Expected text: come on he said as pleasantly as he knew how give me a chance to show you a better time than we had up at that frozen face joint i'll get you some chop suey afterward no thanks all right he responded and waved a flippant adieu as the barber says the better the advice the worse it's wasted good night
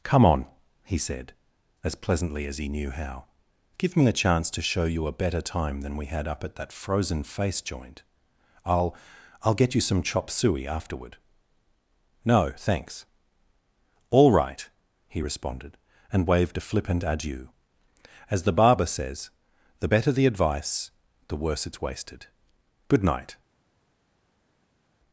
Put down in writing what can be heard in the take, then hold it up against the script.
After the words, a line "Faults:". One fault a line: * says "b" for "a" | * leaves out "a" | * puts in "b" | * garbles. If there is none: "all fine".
come on he said as pleasantly as he knew how give me a chance to show you a better time than we had up at that frozen face joint i'll i'll get you some chop suey afterward no thanks all right he responded and waved a flippant adieu as the barber says the better the advice the worse it's wasted good night
Faults:
* puts in "i'll"